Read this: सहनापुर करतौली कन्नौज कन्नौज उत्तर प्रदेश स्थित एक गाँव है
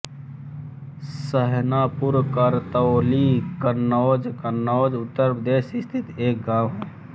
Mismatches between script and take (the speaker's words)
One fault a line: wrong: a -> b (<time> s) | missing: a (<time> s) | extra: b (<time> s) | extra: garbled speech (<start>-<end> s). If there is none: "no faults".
no faults